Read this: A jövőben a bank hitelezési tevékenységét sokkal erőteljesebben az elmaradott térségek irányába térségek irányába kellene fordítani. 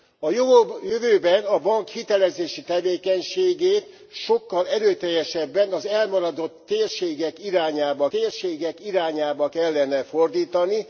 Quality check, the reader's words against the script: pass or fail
pass